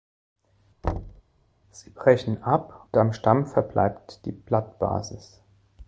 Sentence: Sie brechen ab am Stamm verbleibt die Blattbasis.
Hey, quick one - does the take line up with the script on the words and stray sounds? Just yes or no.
no